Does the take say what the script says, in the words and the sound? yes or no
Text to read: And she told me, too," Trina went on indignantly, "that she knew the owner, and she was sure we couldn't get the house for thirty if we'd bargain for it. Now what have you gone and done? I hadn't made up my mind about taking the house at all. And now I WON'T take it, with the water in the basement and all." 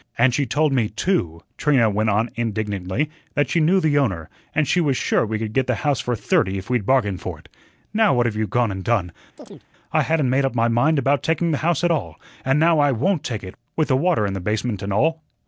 no